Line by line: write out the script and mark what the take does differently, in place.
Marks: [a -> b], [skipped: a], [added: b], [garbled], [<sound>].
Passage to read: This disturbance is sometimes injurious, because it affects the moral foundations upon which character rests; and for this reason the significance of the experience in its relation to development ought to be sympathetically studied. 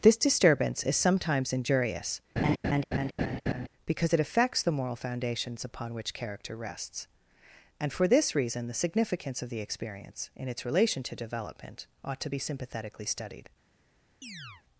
This disturbance is sometimes injurious, [laugh] because it affects the moral foundations upon which character rests; and for this reason the significance of the experience in its relation to development ought to be sympathetically studied. [chirp]